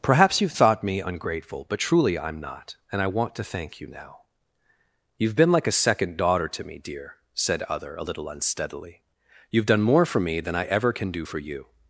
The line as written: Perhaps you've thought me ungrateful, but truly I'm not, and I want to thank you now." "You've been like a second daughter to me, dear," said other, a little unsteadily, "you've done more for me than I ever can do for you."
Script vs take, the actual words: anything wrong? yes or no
no